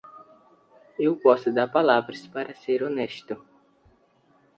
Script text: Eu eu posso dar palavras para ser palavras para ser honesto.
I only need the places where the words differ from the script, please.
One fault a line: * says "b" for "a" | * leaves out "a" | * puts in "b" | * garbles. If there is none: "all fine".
* leaves out "eu"
* leaves out "palavras para ser"